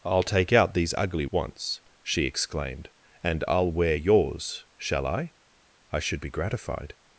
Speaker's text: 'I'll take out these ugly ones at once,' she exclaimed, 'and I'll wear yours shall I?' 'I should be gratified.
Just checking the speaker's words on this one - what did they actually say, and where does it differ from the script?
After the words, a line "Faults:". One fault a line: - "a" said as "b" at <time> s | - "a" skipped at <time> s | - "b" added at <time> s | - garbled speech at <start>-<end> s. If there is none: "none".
'I'll take out these ugly once,' she exclaimed, 'and I'll wear yours shall I?' 'I should be gratified.
Faults:
- "ones at" skipped at 1.2 s